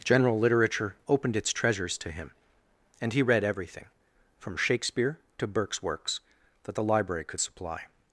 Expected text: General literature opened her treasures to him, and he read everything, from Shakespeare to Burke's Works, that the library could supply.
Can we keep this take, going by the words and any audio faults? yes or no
no